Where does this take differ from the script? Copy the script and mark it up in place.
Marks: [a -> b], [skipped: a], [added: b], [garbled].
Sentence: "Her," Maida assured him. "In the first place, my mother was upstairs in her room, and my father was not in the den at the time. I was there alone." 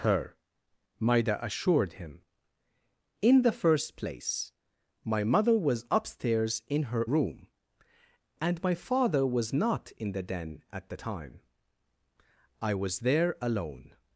"Her," Maida assured him. "In the first place, my mother was upstairs in her room, and my father was not in the den at the time. I was there alone."